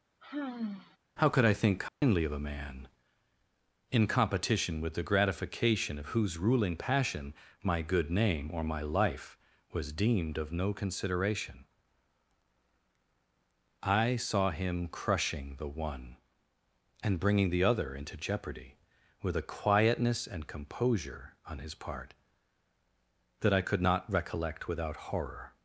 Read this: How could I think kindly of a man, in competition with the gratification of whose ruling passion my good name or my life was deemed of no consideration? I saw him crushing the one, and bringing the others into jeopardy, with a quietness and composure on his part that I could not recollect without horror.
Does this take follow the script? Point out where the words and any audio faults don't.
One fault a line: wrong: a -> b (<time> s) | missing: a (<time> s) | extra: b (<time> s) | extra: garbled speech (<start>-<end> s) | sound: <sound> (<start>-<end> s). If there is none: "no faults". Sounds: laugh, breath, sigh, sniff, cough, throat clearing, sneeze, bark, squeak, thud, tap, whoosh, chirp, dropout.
sound: sigh (0.2-1.0 s)
sound: dropout (1.9-2.0 s)
wrong: others -> other (17.6 s)